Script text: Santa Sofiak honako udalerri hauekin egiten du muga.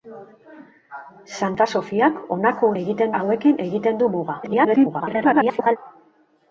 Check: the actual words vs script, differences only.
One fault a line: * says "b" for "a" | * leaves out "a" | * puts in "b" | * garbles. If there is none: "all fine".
* says "egiten" for "udalerri"
* garbles